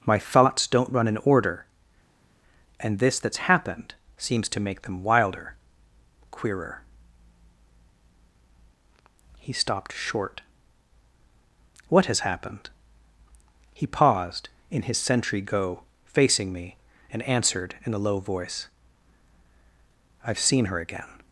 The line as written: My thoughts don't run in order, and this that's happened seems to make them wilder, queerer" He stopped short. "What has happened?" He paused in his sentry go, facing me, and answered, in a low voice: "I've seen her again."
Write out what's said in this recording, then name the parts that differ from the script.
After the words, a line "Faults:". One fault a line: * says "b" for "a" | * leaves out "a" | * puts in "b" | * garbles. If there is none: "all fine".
My thoughts don't run in order, and this that's happened seems to make them wilder, queerer" He stopped short. "What has happened?" He paused in his sentry go, facing me, and answered, in a low voice: "I've seen her again."
Faults:
all fine